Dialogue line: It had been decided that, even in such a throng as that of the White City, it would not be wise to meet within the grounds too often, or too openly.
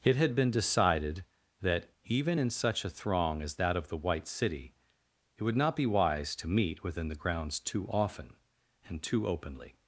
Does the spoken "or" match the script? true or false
false